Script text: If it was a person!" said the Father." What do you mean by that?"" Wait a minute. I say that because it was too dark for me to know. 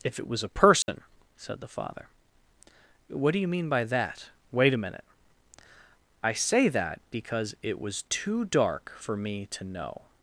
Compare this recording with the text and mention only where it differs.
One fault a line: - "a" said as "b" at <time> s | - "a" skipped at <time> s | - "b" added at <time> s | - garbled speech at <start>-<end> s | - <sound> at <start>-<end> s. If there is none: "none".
- dropout at 0.8-0.9 s